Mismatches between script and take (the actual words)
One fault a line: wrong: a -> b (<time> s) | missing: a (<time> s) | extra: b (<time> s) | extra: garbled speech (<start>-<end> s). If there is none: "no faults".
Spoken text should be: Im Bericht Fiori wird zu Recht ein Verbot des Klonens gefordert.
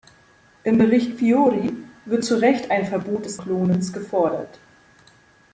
no faults